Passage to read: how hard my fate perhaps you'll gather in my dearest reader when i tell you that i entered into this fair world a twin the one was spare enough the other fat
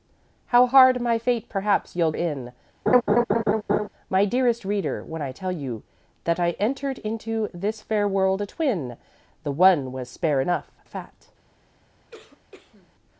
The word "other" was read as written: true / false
false